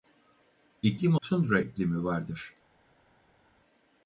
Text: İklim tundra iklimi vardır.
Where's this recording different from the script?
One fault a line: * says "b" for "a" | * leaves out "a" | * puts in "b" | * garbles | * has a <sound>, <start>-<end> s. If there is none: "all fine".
all fine